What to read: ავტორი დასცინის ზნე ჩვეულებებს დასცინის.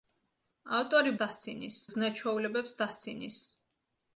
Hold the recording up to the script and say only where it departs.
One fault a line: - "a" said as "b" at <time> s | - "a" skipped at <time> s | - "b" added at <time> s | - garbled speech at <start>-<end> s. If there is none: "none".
none